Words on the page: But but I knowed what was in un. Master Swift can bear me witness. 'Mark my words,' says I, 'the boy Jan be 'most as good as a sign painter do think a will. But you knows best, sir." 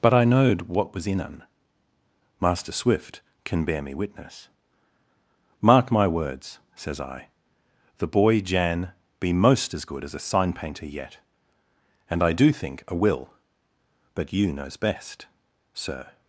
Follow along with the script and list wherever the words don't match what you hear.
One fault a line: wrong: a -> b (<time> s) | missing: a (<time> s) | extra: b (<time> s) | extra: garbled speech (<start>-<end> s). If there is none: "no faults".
missing: but (0.1 s)
extra: yet And I (10.9 s)